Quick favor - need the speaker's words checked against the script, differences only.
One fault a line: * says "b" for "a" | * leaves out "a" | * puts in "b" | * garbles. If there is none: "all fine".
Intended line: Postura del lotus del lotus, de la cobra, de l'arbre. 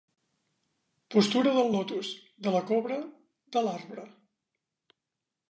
* leaves out "del lotus"